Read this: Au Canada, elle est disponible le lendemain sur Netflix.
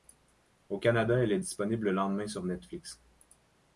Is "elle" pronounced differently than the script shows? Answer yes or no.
no